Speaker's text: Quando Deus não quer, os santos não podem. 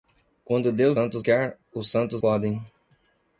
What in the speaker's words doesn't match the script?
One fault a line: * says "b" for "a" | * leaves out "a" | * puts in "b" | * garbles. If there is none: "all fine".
* says "santos" for "não"
* leaves out "não"